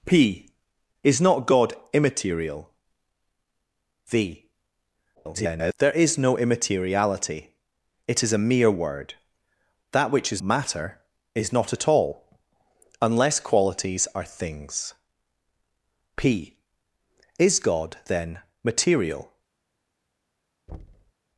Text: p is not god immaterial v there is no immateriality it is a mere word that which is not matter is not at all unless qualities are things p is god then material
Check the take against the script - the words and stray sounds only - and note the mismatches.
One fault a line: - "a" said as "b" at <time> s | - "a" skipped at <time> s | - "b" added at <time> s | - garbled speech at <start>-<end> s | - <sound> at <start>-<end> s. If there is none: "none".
- garbled speech at 5.2-5.7 s
- "not" skipped at 10.4 s
- thud at 20.7-21.1 s